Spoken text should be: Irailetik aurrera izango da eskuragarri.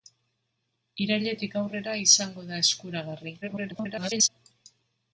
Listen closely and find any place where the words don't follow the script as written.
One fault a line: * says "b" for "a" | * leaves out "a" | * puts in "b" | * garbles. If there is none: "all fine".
* garbles